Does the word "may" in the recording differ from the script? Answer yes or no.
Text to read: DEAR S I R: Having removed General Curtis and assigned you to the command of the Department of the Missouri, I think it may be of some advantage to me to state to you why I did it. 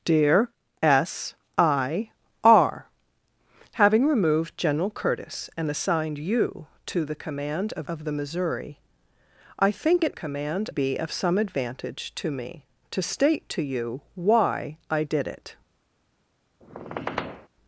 yes